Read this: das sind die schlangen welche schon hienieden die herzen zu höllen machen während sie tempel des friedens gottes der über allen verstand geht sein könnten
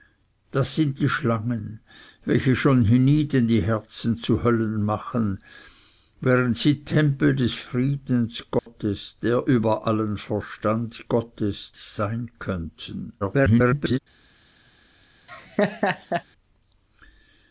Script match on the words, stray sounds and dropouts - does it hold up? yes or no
no